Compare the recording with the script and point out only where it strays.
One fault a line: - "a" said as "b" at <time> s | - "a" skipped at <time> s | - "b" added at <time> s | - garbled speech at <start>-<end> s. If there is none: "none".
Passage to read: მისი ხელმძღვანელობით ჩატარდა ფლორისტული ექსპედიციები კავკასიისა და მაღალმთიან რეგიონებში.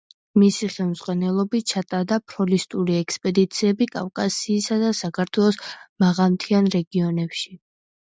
- "საქართველოს" added at 5.0 s